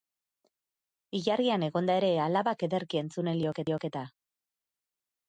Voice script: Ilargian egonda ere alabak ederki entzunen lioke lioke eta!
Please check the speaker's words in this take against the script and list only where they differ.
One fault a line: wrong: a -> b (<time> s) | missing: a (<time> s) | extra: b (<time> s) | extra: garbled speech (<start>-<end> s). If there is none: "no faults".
no faults